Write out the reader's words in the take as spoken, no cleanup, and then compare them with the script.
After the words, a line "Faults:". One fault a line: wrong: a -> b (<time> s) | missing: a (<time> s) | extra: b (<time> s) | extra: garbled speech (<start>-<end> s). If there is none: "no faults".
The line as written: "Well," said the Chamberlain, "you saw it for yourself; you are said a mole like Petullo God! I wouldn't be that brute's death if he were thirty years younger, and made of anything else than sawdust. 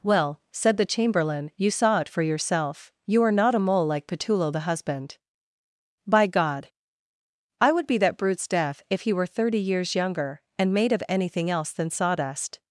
"Well," said the Chamberlain, "you saw it for yourself; you are not a mole like Petullo the husband. By God! I would be that brute's death if he were thirty years younger, and made of anything else than sawdust.
Faults:
wrong: said -> not (3.3 s)
extra: the husband By (4.5 s)
wrong: wouldn't -> would (7.7 s)